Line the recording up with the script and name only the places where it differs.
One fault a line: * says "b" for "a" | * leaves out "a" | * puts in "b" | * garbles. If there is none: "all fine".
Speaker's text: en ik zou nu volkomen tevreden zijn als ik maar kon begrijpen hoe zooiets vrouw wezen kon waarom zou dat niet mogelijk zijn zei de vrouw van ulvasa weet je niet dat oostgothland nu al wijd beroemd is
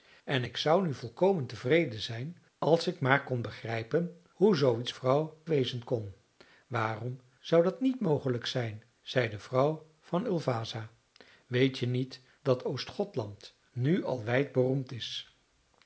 all fine